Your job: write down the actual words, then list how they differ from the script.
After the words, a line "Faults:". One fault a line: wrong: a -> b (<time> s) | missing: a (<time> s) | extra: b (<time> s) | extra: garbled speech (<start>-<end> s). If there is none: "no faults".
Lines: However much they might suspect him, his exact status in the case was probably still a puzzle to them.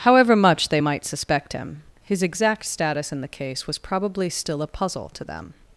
However much they might suspect him, his exact status in the case was probably still a puzzle to them.
Faults:
no faults